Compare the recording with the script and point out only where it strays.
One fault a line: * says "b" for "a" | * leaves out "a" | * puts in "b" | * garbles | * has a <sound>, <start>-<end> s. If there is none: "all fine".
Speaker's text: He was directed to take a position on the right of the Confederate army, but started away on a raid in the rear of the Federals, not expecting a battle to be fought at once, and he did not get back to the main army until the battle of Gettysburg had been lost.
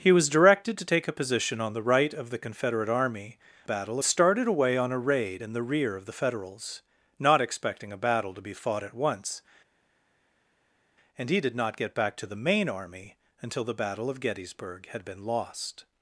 * says "battle" for "but"